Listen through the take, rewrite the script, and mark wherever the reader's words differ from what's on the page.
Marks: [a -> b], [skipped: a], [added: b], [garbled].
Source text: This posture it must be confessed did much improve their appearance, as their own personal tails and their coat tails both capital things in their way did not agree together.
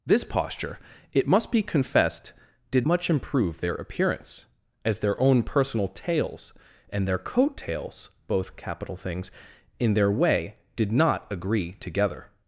This posture it must be confessed did much improve their appearance, as their own personal tails and their coat tails both capital things in their way did not agree together.